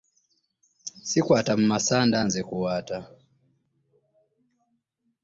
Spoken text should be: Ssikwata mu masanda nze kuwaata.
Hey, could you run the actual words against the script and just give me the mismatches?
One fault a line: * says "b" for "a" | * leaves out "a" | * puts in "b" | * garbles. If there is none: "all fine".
all fine